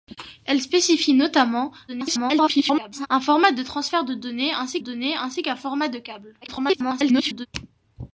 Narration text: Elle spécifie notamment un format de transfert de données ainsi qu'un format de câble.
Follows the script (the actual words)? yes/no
no